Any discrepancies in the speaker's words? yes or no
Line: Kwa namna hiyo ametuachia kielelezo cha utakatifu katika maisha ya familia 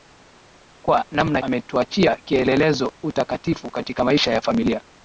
yes